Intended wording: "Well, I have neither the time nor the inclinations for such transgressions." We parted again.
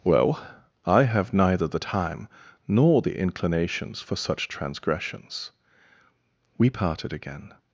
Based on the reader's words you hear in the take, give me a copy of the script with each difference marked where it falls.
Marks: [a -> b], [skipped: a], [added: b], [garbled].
"Well, I have neither the time nor the inclinations for such transgressions." We parted again.